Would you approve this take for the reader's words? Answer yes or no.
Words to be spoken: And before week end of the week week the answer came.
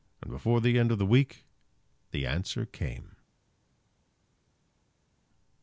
no